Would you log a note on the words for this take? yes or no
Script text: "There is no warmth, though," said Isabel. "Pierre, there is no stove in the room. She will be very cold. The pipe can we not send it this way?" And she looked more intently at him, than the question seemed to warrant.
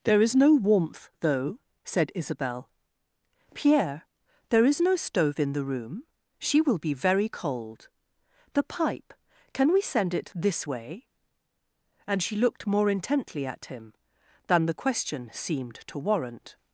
yes